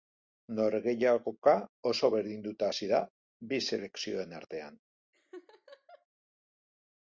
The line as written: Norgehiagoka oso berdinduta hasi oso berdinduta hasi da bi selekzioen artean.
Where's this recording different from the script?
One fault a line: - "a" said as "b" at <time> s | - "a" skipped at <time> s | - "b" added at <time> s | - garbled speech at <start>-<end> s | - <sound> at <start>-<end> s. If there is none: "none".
- "oso berdinduta hasi" skipped at 2.9 s
- laugh at 5.1-6.1 s